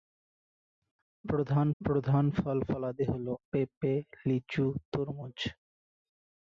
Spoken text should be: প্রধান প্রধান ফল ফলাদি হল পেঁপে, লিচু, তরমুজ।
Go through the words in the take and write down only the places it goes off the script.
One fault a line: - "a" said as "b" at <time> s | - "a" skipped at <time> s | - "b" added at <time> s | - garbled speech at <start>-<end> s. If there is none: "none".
none